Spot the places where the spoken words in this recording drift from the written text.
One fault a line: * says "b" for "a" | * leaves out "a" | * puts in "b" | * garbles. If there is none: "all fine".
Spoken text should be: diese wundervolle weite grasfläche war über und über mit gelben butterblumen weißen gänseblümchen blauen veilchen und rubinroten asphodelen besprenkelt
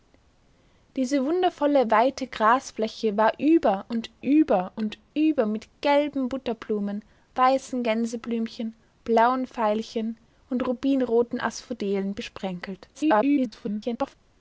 * puts in "und über"
* garbles